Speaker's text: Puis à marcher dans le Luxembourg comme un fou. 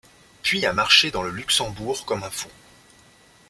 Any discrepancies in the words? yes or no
no